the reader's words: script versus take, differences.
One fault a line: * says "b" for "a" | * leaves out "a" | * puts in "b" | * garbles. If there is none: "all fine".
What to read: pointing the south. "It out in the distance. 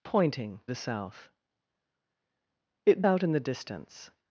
all fine